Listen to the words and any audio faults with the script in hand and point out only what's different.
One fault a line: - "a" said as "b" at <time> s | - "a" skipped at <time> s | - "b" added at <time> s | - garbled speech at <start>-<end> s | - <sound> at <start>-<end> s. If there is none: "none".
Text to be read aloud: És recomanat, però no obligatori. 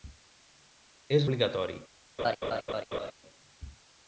- "recomanat però no" skipped at 1.3 s
- laugh at 2.2-3.1 s